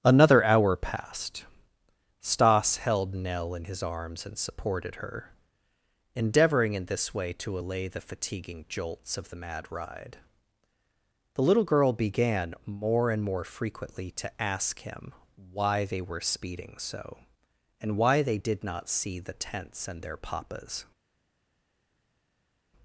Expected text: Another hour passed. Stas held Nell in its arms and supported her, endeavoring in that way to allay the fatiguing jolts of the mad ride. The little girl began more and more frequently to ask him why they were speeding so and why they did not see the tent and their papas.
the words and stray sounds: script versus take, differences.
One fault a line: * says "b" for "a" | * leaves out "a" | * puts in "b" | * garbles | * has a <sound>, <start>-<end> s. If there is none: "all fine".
* says "his" for "its"
* says "this" for "that"
* says "tents" for "tent"